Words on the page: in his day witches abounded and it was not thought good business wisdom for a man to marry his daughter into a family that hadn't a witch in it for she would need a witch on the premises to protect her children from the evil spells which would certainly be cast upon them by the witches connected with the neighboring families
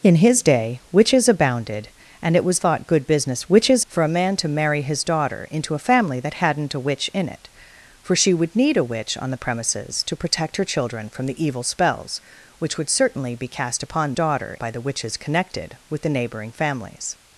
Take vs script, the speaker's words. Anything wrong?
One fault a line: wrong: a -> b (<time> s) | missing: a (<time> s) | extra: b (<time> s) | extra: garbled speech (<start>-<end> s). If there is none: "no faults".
missing: not (2.6 s)
wrong: wisdom -> witches (3.5 s)
wrong: them -> daughter (14.1 s)